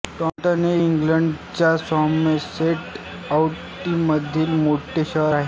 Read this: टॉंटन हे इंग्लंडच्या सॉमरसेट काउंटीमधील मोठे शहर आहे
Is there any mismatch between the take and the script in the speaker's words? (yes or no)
no